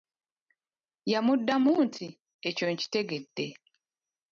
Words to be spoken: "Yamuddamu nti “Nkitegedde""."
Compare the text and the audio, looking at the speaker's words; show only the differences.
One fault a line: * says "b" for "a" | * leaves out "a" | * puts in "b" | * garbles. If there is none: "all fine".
* puts in "Ekyo"